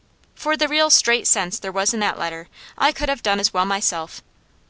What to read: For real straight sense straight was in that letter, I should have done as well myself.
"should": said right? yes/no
no